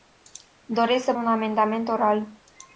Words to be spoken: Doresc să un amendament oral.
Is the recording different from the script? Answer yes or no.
no